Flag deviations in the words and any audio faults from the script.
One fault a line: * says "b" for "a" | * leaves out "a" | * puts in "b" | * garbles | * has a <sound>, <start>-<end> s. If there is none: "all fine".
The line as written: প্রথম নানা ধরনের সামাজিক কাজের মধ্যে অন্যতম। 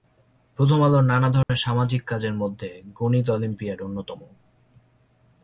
* puts in "আলোর"
* has a dropout, 1.4-1.5 s
* puts in "গণিত অলিম্পিয়াড"